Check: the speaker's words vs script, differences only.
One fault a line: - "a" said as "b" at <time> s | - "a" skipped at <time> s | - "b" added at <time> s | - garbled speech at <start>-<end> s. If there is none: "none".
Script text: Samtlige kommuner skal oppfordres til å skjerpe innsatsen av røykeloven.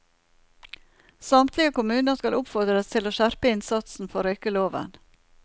- "av" said as "for" at 4.1 s